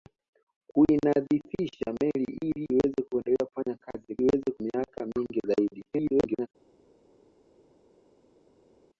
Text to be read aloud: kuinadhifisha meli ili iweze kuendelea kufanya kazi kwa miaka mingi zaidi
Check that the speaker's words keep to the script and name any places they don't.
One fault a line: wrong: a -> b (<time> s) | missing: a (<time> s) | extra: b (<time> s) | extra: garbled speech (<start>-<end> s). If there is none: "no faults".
wrong: kwa -> iweze (4.2 s)
extra: garbled speech (5.9-6.5 s)